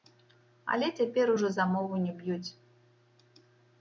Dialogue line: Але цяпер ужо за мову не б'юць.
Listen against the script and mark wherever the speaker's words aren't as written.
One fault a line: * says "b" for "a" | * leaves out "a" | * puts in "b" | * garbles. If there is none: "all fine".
all fine